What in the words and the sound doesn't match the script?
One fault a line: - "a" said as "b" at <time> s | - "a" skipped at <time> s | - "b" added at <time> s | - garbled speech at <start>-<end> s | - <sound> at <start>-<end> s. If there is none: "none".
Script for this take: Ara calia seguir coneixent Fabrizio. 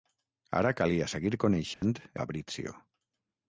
- dropout at 1.7-1.8 s